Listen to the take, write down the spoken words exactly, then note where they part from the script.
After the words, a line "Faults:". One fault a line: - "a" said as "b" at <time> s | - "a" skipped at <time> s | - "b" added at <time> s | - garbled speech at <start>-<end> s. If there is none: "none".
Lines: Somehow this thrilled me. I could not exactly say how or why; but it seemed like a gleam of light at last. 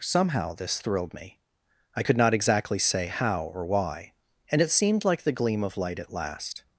Somehow this thrilled me. I could not exactly say how or why; and it seemed like the gleam of light at last.
Faults:
- "but" said as "and" at 4.5 s
- "a" said as "the" at 5.2 s